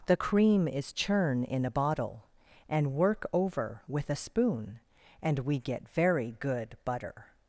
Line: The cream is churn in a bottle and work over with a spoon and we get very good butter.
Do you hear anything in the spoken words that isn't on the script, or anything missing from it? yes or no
no